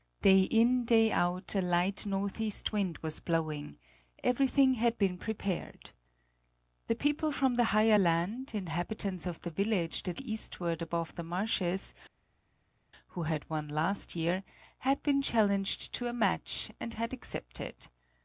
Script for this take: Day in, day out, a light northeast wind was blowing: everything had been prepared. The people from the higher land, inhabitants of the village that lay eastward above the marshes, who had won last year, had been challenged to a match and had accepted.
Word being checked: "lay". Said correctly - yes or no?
no